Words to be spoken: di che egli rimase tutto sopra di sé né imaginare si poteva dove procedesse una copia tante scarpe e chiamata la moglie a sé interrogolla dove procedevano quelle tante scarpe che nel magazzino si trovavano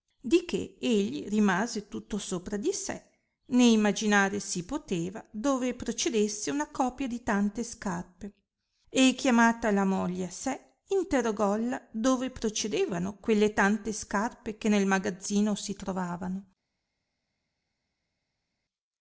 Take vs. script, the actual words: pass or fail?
fail